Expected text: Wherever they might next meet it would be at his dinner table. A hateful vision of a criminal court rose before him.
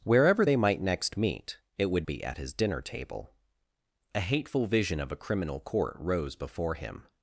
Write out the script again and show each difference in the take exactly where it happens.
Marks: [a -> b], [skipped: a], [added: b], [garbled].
Wherever they might next meet it would be at his dinner table. A hateful vision of a criminal court rose before him.